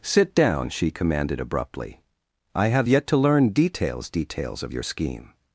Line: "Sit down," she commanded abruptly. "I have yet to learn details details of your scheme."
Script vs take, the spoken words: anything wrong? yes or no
no